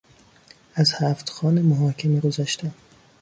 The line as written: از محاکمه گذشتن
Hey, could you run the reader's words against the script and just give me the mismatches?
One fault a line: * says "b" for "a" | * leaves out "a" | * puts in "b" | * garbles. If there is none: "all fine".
* puts in "هفت خوان"